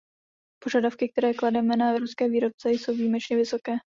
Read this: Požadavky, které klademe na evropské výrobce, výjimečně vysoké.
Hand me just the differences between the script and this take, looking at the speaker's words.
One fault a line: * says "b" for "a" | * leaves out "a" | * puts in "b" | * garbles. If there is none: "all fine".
* puts in "jsou"